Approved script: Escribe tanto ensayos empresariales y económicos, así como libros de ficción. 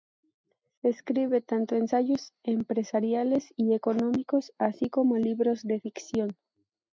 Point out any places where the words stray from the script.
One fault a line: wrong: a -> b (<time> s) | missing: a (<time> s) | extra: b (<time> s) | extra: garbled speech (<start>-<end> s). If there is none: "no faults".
no faults